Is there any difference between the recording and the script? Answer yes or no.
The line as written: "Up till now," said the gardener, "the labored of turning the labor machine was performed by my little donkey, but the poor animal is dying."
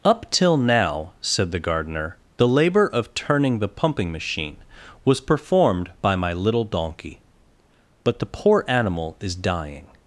yes